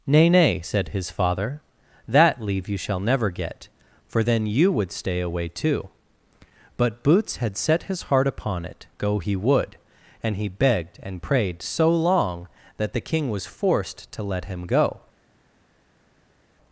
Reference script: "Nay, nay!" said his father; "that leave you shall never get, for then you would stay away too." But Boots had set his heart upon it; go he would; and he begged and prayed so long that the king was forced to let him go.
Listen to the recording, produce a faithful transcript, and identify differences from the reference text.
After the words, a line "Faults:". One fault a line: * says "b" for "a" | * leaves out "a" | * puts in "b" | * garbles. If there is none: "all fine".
"Nay, nay!" said his father; "that leave you shall never get, for then you would stay away too." But Boots had set his heart upon it; go he would; and he begged and prayed so long that the king was forced to let him go.
Faults:
all fine